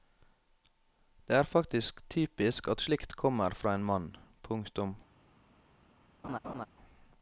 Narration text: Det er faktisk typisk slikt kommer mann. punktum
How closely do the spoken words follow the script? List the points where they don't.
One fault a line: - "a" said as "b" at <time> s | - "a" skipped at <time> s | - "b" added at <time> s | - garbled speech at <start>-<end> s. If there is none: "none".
- "at" added at 2.7 s
- "fra en" added at 3.5 s